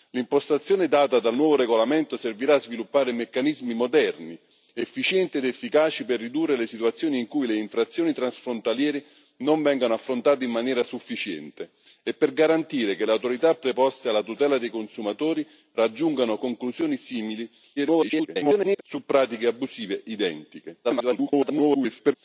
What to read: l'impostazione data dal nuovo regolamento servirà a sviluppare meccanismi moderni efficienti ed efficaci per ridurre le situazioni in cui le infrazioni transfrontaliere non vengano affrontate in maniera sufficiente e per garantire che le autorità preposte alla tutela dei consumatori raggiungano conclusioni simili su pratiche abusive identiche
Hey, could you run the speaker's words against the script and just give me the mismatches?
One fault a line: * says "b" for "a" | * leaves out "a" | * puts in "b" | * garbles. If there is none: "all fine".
* garbles
* garbles